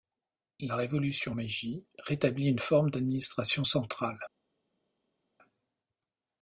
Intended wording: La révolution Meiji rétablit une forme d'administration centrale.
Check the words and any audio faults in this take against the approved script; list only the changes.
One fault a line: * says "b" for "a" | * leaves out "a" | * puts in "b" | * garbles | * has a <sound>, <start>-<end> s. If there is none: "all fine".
all fine